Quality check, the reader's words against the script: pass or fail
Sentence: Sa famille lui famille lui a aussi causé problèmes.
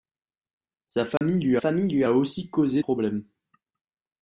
pass